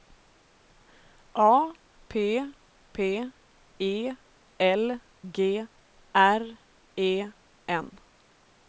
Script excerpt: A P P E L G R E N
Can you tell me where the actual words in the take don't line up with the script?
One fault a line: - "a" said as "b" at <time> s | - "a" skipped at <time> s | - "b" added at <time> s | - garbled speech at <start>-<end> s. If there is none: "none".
none